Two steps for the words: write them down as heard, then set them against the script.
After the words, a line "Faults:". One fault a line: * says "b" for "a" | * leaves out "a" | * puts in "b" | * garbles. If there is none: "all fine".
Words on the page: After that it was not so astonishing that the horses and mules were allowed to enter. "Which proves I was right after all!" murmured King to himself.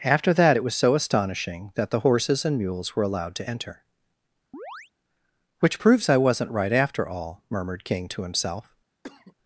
After that it was so astonishing that the horses and mules were allowed to enter. "Which proves I wasn't right after all!" murmured King to himself.
Faults:
* leaves out "not"
* says "wasn't" for "was"